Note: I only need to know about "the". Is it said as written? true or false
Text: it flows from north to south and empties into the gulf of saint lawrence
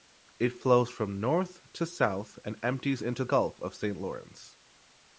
false